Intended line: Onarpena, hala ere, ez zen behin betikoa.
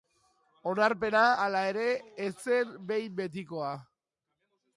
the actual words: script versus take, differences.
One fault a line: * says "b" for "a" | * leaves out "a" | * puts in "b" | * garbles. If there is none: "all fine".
all fine